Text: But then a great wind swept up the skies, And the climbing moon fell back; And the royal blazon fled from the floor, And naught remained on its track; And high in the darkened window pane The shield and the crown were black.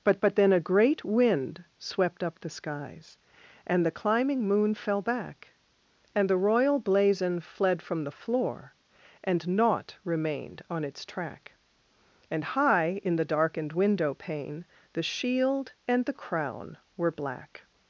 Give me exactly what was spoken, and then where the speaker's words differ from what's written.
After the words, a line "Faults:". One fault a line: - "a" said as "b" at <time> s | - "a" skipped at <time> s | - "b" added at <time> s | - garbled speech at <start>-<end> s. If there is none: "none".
But but then a great wind swept up the skies, And the climbing moon fell back; And the royal blazon fled from the floor, And naught remained on its track; And high in the darkened window pane The shield and the crown were black.
Faults:
- "but" added at 0.2 s